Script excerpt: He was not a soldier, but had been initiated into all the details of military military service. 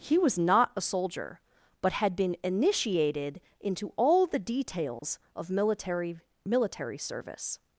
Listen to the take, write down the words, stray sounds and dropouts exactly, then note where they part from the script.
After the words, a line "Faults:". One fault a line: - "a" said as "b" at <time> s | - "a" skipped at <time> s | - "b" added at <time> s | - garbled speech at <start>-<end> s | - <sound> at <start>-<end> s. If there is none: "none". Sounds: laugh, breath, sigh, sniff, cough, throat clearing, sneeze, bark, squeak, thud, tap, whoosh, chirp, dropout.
He was not a soldier, but had been initiated into all the details of military military service.
Faults:
- dropout at 5.0-5.0 s